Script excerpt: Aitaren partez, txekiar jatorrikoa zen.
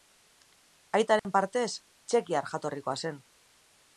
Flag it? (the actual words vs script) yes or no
no